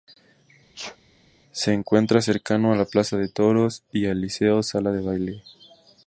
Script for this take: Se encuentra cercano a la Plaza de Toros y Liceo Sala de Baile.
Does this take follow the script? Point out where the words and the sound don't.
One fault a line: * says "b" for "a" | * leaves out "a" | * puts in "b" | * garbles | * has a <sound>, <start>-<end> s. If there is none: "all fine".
* has a sneeze, 0.7-1.0 s
* puts in "al"